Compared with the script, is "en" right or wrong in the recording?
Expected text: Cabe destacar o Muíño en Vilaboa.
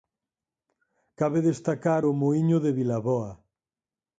wrong